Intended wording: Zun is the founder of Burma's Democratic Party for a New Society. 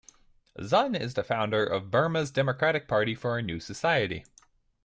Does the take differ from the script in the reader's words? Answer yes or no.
no